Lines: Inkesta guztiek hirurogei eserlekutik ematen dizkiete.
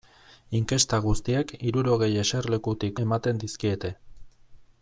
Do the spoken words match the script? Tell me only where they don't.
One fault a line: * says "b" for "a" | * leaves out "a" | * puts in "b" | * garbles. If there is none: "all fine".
all fine